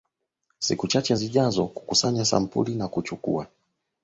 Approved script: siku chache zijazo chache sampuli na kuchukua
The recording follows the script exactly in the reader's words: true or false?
false